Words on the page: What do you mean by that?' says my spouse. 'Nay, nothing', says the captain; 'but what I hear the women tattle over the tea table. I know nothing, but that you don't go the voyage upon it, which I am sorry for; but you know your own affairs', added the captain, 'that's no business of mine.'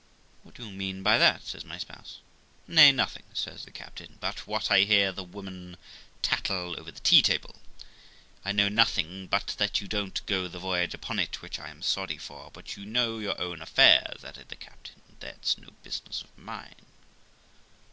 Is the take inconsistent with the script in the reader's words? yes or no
no